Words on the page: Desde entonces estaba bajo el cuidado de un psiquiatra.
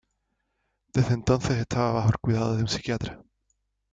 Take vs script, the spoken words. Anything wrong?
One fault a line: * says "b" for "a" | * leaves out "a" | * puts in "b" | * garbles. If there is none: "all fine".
all fine